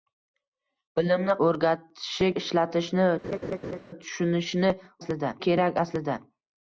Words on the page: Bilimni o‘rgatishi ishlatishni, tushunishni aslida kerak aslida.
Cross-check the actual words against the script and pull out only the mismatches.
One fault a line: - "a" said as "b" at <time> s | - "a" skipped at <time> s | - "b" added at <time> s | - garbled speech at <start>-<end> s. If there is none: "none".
none